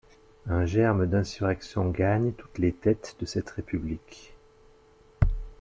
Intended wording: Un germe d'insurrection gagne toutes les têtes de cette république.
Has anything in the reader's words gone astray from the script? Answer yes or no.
no